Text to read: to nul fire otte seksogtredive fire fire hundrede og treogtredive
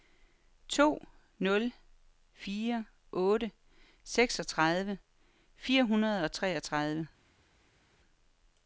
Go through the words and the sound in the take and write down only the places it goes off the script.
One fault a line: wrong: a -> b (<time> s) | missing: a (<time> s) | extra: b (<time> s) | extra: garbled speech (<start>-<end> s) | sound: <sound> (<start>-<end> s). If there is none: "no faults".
missing: fire (5.8 s)